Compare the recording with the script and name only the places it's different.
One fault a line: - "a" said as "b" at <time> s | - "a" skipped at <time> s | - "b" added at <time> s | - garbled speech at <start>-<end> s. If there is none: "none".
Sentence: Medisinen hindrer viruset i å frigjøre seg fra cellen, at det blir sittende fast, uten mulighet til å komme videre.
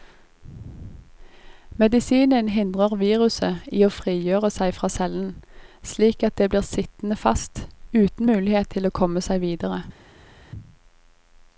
- "slik" added at 5.9 s
- "seg" added at 9.2 s